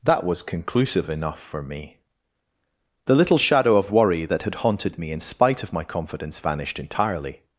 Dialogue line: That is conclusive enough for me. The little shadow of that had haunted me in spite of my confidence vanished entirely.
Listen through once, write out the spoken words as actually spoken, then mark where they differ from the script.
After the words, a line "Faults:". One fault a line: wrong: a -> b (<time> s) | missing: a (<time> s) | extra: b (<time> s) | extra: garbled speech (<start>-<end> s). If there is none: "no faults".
That was conclusive enough for me. The little shadow of worry that had haunted me in spite of my confidence vanished entirely.
Faults:
wrong: is -> was (0.2 s)
extra: worry (3.9 s)